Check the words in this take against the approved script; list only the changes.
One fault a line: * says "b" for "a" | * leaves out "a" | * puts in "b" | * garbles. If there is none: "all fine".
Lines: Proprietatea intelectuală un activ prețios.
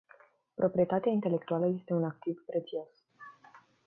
* puts in "este"